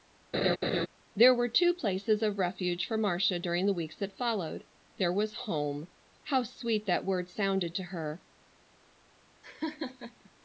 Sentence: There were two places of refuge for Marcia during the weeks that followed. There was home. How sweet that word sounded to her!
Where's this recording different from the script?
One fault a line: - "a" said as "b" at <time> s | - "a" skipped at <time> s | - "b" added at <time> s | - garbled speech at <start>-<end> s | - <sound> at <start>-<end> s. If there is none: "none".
- laugh at 0.3-0.9 s
- laugh at 9.4-10.3 s